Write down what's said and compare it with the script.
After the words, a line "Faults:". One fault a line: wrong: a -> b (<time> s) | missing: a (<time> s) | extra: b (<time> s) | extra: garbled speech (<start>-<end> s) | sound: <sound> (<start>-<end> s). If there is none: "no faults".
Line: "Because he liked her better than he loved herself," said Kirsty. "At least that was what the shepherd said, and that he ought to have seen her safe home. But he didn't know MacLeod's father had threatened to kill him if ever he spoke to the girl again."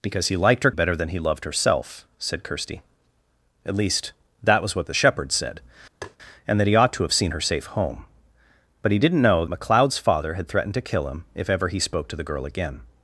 "Because he liked her better than he loved herself," said Kirsty. "At least that was what the shepherd said, and that he ought to have seen her safe home. But he didn't know MacLeod's father had threatened to kill him if ever he spoke to the girl again."
Faults:
sound: tap (6.0-6.2 s)